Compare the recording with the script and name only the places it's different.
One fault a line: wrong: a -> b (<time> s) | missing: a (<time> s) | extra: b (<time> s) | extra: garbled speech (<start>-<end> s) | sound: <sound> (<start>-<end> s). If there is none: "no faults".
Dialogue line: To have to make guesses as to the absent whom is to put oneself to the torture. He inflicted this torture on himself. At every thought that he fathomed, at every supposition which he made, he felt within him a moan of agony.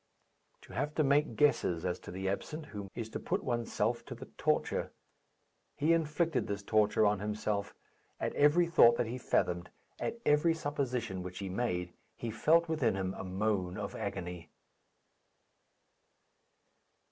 no faults